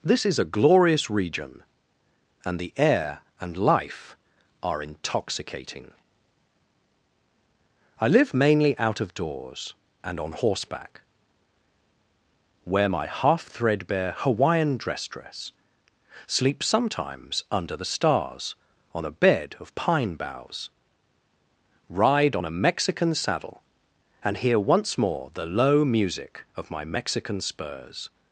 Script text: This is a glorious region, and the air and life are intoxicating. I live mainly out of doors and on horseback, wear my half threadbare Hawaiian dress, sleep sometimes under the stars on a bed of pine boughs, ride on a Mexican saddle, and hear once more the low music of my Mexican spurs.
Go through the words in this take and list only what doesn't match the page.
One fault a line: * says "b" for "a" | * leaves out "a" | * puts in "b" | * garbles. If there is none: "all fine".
* puts in "dress"